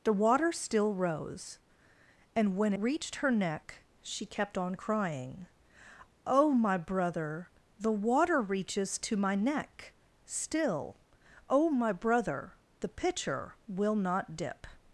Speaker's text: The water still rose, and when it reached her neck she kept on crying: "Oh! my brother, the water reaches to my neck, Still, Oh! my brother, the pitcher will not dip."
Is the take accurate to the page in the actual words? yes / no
no